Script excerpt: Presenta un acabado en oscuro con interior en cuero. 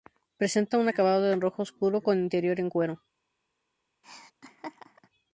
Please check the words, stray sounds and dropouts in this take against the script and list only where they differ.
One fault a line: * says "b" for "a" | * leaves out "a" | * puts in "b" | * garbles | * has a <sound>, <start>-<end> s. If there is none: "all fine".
* puts in "rojo"
* has a laugh, 4.0-5.1 s